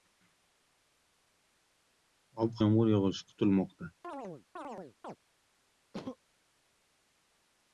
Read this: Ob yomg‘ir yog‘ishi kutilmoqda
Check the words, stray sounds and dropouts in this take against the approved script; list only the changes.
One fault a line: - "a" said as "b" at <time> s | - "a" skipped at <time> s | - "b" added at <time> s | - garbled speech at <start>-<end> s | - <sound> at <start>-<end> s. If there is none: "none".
- chirp at 4.0-5.2 s
- sneeze at 5.9-6.2 s